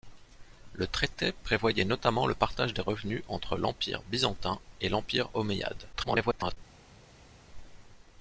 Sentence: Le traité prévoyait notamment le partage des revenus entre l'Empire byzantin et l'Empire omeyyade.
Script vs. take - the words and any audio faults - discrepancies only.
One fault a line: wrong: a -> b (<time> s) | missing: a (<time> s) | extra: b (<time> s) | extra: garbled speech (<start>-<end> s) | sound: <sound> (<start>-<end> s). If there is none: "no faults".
extra: garbled speech (5.9-6.6 s)